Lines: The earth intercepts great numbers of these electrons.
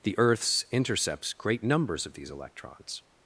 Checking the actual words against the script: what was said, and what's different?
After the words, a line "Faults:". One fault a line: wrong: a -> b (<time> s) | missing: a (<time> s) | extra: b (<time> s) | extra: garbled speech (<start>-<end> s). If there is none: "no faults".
The earths intercepts great numbers of these electrons.
Faults:
wrong: earth -> earths (0.2 s)